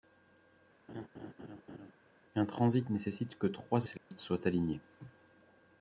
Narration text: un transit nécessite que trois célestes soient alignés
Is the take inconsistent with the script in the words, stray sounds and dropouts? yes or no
yes